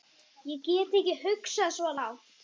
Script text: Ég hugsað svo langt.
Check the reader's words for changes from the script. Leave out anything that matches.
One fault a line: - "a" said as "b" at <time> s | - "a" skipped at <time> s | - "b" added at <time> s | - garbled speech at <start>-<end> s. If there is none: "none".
- "get ekki" added at 0.7 s